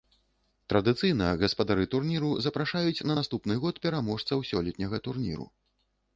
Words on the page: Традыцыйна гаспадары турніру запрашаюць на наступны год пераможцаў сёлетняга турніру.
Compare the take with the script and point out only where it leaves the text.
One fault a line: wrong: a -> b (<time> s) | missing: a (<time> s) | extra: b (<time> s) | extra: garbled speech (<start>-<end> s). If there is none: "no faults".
no faults